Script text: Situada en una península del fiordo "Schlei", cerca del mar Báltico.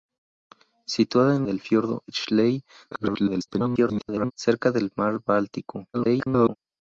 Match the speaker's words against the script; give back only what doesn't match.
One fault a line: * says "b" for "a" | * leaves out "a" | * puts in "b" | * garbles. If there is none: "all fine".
* leaves out "una península"
* garbles
* garbles